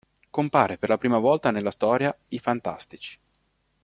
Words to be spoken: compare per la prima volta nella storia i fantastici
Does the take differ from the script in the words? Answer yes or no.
no